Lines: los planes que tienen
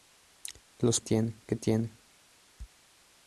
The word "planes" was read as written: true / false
false